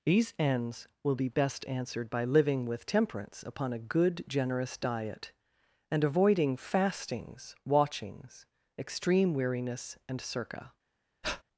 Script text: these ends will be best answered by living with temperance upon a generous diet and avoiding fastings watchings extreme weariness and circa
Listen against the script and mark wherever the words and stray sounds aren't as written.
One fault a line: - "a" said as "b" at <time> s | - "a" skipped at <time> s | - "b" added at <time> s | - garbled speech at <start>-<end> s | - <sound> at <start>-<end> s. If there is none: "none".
- "good" added at 3.8 s
- breath at 11.2-11.4 s